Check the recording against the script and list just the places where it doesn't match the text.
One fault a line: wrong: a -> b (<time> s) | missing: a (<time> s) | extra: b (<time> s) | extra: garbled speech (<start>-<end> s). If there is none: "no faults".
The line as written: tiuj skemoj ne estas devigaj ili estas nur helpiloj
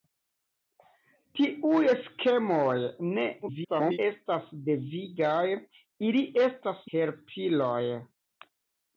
extra: garbled speech (3.4-4.0 s)
missing: nur (6.8 s)